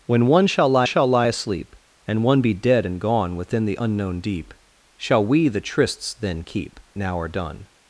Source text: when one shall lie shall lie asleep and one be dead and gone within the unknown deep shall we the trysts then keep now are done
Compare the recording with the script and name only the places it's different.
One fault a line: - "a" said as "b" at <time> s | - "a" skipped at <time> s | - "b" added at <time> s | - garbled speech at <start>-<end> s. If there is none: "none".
none